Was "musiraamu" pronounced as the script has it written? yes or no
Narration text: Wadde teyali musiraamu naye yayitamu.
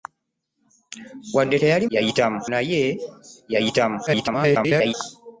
no